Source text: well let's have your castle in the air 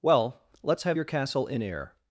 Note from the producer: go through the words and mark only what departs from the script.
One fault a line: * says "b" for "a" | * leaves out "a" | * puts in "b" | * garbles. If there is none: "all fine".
* leaves out "the"